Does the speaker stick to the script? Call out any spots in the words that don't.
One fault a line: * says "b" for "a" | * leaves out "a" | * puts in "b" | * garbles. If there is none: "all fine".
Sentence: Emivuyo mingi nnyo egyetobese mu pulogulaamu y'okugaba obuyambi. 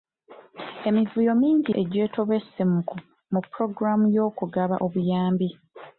* leaves out "nnyo"